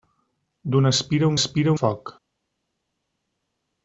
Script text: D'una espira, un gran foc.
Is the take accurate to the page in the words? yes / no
no